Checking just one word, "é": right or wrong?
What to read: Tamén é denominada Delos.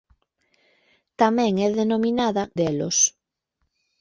right